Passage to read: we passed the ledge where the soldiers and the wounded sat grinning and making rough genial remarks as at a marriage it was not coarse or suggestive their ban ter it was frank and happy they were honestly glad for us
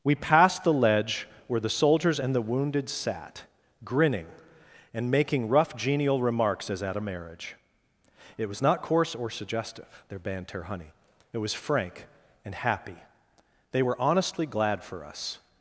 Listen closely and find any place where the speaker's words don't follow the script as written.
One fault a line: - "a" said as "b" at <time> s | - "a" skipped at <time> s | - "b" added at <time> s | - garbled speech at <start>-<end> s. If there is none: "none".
- "ban ter" said as "banter honey" at 10.2 s